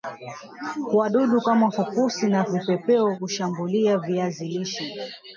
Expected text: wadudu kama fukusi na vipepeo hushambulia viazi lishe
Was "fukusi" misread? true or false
false